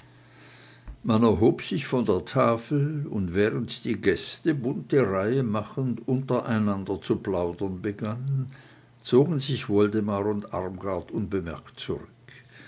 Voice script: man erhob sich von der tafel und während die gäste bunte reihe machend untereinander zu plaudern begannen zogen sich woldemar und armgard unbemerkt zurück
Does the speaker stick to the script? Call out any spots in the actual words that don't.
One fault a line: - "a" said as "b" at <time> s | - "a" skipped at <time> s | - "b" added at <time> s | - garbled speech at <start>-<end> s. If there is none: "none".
none